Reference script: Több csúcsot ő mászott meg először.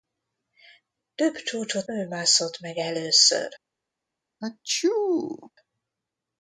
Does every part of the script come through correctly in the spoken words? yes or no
yes